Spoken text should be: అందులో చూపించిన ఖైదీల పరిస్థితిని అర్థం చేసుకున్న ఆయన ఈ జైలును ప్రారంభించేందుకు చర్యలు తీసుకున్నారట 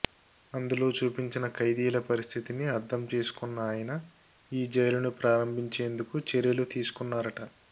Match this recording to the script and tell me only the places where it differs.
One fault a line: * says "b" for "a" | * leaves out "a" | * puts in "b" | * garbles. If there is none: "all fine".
all fine